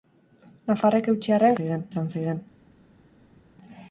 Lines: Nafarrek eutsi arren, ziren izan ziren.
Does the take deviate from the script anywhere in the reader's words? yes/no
no